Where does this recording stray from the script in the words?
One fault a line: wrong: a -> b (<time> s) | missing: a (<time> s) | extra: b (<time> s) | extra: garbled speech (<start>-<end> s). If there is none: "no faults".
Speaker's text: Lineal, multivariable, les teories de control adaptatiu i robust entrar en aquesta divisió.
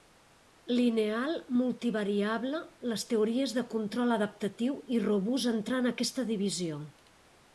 no faults